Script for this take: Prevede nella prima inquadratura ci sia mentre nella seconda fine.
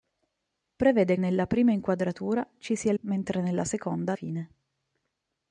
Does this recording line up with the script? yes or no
yes